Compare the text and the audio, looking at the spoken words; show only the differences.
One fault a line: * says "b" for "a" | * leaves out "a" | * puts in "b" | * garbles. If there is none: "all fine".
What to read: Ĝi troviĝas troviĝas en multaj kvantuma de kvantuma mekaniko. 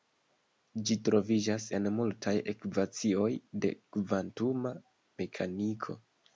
* leaves out "troviĝas"
* says "ekvacioj" for "kvantuma"